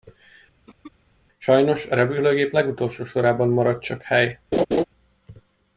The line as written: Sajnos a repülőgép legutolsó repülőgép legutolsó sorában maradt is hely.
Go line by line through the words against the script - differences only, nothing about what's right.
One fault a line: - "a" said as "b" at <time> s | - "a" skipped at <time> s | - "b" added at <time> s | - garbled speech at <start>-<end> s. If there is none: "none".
- "repülőgép legutolsó" skipped at 3.0 s
- "is" said as "csak" at 3.8 s